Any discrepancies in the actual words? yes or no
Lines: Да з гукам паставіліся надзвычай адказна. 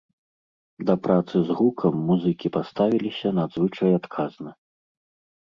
yes